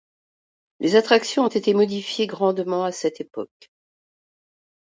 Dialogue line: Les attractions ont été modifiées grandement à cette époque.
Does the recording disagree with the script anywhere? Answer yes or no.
no